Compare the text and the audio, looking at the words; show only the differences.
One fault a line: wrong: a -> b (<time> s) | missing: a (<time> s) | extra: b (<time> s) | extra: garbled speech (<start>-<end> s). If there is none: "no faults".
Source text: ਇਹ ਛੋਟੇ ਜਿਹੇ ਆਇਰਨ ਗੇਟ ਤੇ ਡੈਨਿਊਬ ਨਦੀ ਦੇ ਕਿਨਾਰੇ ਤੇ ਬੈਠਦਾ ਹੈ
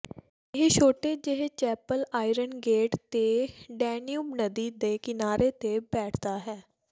extra: ਚੈਪਲ (1.5 s)